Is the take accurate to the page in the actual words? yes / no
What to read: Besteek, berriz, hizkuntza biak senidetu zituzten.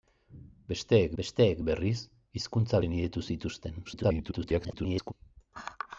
no